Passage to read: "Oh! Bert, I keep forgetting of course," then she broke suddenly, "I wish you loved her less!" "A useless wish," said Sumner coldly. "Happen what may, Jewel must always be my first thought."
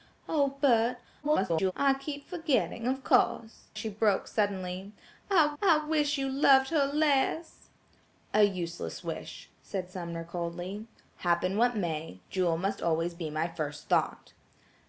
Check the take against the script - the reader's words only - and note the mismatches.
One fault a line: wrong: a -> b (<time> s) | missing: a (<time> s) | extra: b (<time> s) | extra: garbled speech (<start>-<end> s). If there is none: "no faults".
extra: garbled speech (1.2-1.7 s)
missing: then (3.7 s)
extra: I (5.6 s)